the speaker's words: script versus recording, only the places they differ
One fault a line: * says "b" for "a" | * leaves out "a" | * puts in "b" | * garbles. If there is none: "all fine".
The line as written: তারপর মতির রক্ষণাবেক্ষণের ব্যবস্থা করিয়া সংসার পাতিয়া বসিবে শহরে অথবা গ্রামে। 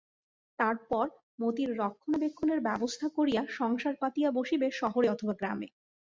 all fine